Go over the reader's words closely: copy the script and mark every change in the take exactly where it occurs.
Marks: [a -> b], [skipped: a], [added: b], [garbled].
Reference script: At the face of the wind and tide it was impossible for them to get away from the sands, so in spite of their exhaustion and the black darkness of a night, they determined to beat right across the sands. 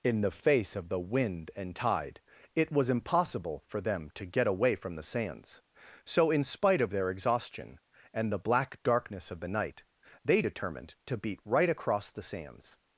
[At -> In] the face of the wind and tide it was impossible for them to get away from the sands, so in spite of their exhaustion and the black darkness of [a -> the] night, they determined to beat right across the sands.